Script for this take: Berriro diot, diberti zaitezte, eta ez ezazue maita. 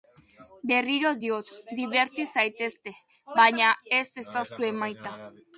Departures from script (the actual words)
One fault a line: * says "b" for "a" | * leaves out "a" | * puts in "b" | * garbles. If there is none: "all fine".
* says "baina" for "eta"